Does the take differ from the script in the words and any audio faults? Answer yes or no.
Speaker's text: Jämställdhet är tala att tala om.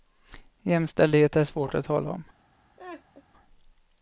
yes